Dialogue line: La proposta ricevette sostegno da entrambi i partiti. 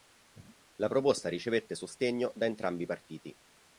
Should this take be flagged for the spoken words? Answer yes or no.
no